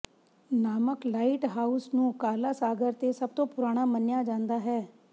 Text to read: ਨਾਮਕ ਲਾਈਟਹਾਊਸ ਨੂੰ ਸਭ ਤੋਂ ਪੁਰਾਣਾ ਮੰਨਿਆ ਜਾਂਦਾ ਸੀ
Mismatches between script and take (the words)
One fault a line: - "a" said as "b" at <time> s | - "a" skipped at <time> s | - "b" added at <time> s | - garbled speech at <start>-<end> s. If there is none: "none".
- "ਕਾਲਾ ਸਾਗਰ ਤੇ" added at 2.2 s
- "ਸੀ" said as "ਹੈ" at 4.6 s